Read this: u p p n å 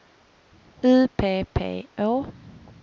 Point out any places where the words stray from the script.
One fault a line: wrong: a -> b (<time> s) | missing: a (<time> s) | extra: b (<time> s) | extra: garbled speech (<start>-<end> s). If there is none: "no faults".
missing: n (1.9 s)